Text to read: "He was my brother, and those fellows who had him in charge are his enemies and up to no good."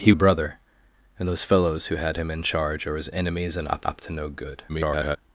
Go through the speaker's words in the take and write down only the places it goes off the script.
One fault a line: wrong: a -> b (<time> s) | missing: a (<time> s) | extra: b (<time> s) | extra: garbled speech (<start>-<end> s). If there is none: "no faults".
missing: was my (0.1 s)
extra: up (3.8 s)
extra: garbled speech (4.7-5.2 s)